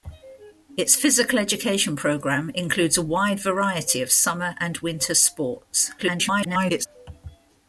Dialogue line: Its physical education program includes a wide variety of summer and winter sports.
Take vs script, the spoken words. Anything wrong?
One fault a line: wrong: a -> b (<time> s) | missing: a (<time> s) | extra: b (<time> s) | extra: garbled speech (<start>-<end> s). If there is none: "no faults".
extra: garbled speech (6.0-6.9 s)